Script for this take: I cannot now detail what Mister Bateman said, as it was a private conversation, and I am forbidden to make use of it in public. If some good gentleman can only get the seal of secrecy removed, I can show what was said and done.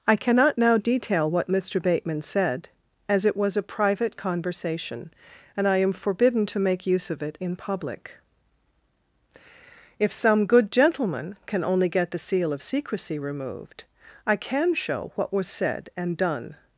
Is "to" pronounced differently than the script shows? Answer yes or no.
no